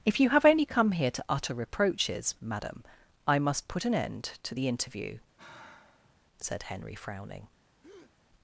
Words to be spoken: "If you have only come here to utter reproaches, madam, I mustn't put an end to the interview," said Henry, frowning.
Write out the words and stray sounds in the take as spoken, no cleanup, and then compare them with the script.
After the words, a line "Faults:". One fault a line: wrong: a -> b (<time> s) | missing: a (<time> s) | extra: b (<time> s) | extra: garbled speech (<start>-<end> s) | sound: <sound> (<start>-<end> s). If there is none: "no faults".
"If you have only come here to utter reproaches, madam, I must put an end to the interview," said Henry, frowning.
Faults:
wrong: mustn't -> must (3.4 s)
sound: sigh (5.4-6.2 s)
sound: breath (7.8-8.1 s)